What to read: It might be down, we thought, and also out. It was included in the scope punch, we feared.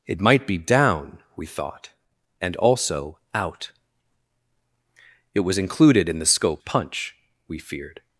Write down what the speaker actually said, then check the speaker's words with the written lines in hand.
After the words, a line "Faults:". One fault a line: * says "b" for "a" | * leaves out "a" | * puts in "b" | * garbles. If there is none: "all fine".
It might be down, we thought, and also out. It was included in the scope punch, we feared.
Faults:
all fine